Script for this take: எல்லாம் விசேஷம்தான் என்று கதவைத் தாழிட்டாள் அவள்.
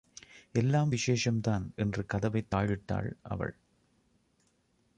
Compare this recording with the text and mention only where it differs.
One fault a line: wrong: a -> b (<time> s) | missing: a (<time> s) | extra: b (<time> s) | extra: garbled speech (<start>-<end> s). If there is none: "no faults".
no faults